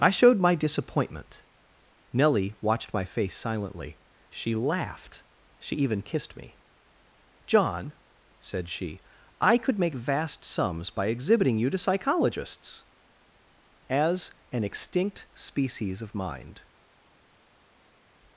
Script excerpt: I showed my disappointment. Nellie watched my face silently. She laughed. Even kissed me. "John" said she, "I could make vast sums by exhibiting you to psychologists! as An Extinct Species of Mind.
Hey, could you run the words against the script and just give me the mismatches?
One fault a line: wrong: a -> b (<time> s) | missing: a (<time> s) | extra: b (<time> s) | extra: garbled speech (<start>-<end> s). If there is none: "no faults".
extra: She (5.6 s)